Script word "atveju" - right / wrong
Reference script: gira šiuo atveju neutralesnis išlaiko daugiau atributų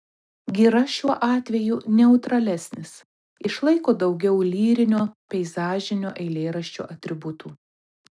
right